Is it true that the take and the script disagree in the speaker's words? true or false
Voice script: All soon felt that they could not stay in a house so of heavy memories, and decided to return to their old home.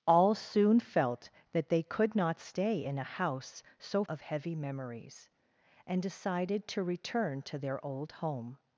false